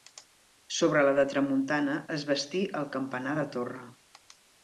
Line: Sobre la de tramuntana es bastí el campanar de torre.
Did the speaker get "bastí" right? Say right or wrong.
right